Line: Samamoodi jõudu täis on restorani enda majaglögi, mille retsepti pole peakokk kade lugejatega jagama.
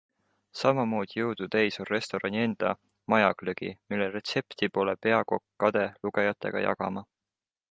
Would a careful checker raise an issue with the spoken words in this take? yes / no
no